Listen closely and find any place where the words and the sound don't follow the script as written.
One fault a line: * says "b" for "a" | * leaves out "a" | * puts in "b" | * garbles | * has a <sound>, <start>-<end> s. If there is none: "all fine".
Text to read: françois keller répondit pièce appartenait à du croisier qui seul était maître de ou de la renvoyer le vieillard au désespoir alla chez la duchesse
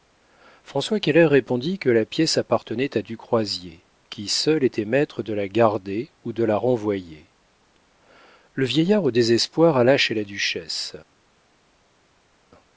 * puts in "que la"
* puts in "la garder"